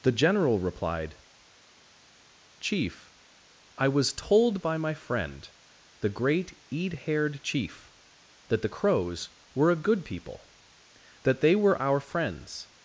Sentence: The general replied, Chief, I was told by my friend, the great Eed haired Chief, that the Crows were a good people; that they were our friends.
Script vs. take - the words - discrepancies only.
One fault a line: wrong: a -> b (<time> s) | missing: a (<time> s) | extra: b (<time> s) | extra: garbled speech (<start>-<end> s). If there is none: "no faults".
no faults